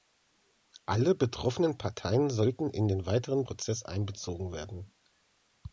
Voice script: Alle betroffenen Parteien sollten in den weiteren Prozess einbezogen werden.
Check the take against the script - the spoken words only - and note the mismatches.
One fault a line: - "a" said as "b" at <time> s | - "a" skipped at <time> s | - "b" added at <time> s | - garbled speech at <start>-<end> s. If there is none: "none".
none